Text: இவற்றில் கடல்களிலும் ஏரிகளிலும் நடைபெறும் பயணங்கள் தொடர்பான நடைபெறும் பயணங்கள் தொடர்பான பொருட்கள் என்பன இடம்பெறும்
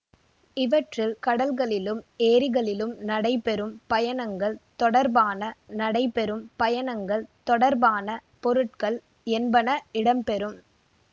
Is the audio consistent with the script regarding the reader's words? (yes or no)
yes